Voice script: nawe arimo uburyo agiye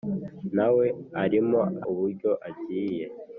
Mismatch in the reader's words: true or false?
false